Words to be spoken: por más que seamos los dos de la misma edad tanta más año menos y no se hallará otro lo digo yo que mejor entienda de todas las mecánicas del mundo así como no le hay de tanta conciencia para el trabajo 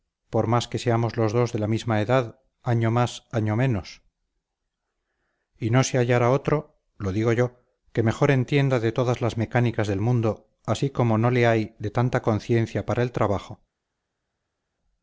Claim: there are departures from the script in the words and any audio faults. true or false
true